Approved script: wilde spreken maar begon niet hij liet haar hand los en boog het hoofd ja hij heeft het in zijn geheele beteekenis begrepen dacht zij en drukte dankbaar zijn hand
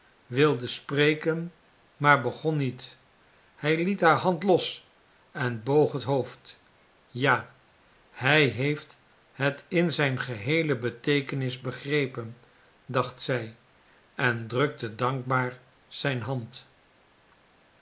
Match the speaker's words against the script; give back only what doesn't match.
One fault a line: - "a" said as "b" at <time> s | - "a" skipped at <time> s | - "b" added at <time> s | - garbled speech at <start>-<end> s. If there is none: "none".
none